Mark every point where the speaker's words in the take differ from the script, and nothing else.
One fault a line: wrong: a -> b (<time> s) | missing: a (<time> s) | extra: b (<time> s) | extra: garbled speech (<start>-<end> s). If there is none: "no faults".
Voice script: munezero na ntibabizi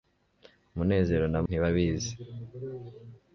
no faults